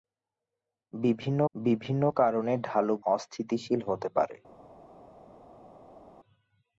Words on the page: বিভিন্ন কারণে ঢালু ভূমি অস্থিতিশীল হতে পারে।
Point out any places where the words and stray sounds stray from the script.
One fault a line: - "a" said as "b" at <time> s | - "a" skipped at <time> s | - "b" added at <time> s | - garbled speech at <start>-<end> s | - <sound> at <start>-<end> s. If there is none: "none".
- "বিভিন্ন" added at 1.5 s
- "ভূমি" skipped at 3.0 s